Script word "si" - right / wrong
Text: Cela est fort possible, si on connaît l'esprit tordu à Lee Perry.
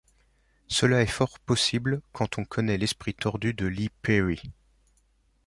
wrong